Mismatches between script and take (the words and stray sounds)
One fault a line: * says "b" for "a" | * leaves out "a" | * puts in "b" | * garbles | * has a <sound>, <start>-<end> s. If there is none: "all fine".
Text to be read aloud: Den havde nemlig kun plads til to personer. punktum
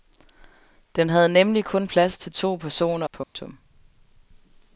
* has a dropout, 3.2-3.3 s